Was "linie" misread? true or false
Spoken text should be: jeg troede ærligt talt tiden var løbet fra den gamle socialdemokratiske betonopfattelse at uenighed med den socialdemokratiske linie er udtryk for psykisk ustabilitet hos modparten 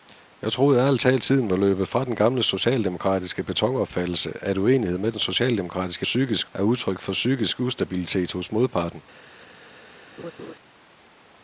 true